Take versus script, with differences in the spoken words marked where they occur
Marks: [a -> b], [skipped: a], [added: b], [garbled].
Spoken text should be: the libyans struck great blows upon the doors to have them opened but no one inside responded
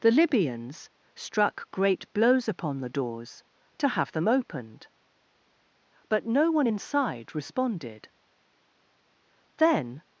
the libyans struck great blows upon the doors to have them opened but no one inside responded [added: then]